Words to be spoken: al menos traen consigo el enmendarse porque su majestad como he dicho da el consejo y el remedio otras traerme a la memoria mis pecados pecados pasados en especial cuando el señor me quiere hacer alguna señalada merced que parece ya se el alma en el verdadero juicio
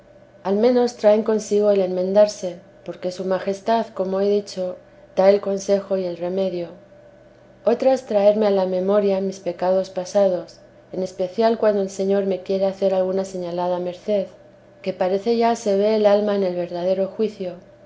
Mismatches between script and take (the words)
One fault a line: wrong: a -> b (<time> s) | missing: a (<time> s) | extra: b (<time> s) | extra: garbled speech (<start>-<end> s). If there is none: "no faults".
missing: pecados (9.9 s)
extra: ve (15.7 s)